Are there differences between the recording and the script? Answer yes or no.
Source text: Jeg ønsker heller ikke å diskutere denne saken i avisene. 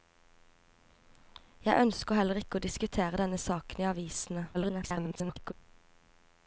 yes